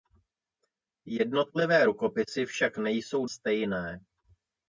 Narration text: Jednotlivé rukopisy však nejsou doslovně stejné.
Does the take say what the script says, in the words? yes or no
no